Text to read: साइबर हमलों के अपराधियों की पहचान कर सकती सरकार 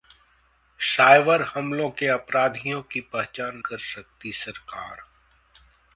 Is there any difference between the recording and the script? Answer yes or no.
no